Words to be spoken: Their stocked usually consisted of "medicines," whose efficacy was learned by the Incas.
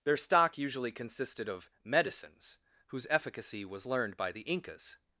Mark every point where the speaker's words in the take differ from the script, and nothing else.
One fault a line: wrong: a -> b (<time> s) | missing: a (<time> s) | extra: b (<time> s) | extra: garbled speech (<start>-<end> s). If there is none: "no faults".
wrong: stocked -> stock (0.2 s)